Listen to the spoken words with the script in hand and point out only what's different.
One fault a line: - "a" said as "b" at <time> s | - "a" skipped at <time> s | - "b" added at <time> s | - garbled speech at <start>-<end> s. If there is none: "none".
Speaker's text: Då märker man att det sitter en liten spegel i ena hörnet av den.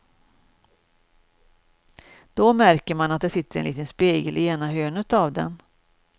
none